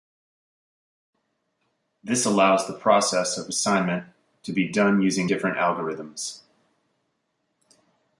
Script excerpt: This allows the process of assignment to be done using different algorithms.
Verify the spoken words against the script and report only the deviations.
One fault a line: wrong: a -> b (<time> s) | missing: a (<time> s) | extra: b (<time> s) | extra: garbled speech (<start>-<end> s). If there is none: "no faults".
no faults